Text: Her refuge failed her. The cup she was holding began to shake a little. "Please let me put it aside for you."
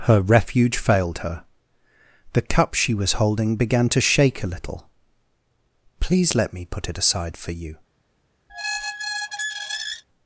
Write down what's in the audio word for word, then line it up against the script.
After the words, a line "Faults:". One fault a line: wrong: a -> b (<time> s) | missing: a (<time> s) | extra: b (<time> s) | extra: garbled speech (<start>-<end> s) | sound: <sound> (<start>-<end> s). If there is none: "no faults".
Her refuge failed her. The cup she was holding began to shake a little. "Please let me put it aside for you."
Faults:
sound: squeak (8.5-10.0 s)